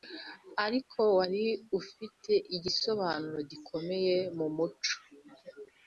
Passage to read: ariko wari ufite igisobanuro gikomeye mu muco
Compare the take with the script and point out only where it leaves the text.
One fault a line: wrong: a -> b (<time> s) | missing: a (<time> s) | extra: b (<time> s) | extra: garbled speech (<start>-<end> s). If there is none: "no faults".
no faults